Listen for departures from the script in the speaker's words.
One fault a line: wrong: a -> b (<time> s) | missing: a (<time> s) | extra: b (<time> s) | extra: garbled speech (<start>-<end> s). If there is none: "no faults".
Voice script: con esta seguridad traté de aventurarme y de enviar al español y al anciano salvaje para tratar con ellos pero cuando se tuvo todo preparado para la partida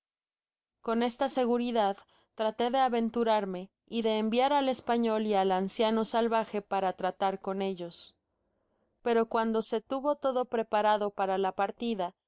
no faults